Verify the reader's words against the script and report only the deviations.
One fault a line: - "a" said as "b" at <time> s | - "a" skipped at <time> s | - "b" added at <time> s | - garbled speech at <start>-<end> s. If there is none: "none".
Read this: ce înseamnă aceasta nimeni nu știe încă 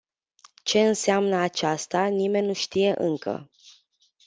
none